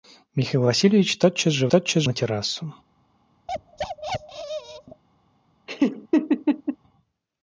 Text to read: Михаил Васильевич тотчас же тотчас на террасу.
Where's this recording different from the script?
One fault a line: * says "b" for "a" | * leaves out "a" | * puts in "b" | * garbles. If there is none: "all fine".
all fine